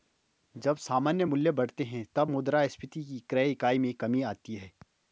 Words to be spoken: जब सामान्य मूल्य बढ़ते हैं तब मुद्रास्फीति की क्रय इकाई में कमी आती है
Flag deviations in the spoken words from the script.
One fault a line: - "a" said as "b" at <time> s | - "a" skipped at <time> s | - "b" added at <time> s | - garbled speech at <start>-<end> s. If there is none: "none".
none